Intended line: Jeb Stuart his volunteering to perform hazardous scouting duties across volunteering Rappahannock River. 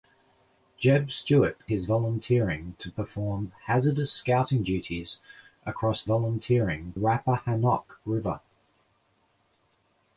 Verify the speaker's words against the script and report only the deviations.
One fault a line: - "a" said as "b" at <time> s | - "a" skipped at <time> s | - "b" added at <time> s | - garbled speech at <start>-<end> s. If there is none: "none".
none